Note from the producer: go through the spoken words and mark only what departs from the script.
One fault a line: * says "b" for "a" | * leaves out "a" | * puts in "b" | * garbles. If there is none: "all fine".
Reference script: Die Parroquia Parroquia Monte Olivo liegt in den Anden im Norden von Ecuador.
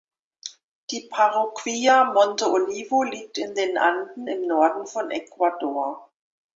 * leaves out "Parroquia"